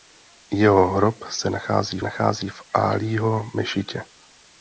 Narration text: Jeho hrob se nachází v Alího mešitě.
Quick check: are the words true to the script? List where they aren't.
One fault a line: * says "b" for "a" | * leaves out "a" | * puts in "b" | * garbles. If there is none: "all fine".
* puts in "nachází"